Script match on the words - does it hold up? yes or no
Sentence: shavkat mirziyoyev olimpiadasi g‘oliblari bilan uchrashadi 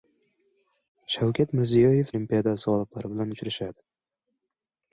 yes